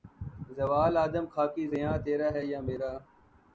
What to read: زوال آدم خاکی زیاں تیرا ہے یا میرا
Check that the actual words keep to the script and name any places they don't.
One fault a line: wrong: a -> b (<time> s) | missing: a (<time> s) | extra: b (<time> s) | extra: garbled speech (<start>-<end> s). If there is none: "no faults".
no faults